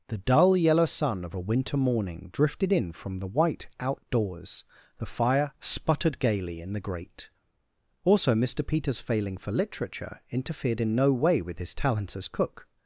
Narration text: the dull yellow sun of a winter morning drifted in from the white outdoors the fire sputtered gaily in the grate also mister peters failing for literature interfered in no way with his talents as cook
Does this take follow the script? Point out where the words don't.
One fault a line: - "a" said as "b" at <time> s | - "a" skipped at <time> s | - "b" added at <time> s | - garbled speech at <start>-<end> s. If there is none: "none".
none